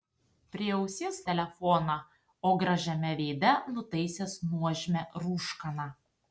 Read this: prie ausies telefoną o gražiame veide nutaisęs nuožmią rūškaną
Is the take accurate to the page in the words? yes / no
yes